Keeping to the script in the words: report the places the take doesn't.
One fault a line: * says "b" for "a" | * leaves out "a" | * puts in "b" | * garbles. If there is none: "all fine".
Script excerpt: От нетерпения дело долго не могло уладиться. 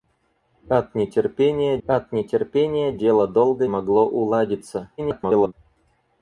* puts in "от нетерпения"
* leaves out "не"
* garbles